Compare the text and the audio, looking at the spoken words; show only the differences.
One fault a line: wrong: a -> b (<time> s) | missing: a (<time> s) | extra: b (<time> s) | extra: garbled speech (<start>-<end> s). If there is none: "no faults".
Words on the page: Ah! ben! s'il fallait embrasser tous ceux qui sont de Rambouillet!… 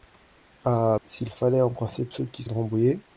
missing: ben (1.0 s)
missing: tous (2.1 s)
missing: sont (2.4 s)